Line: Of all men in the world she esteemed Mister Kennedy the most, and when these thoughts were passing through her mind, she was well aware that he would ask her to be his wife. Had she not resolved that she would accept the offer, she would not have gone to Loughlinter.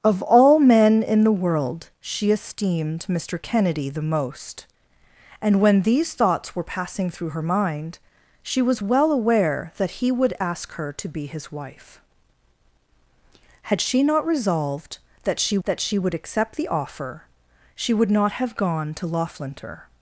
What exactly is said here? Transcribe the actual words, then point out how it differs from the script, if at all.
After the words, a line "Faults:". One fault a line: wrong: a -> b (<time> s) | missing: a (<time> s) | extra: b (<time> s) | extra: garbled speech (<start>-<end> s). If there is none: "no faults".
Of all men in the world she esteemed Mister Kennedy the most, and when these thoughts were passing through her mind, she was well aware that he would ask her to be his wife. Had she not resolved that she that she would accept the offer, she would not have gone to Loughlinter.
Faults:
extra: that she (15.7 s)